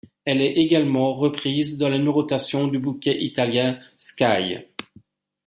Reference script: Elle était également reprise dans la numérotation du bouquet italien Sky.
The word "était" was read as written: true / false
false